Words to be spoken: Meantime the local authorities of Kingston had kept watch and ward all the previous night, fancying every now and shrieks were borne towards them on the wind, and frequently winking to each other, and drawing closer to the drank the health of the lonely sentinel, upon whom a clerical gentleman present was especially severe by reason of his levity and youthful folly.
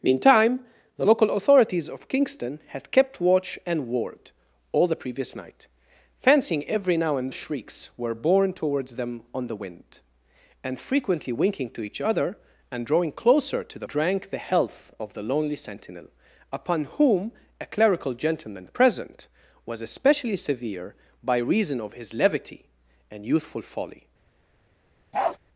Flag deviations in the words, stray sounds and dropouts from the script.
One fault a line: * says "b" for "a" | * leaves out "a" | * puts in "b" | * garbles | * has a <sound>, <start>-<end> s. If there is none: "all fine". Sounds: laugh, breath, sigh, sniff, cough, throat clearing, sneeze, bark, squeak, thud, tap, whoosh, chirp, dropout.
* has a bark, 25.1-25.4 s